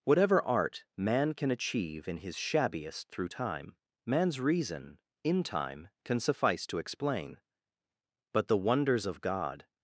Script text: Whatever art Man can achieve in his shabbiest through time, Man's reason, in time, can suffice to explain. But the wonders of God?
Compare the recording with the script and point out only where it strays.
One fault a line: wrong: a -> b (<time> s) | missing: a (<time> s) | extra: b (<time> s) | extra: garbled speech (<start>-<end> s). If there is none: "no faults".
no faults